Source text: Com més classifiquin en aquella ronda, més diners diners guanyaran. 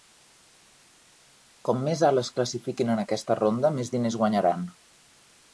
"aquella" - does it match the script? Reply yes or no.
no